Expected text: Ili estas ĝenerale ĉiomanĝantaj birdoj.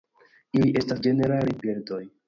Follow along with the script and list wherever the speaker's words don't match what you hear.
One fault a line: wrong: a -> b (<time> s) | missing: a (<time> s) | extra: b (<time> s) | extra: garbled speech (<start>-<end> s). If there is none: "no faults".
missing: ĉiomanĝantaj (1.6 s)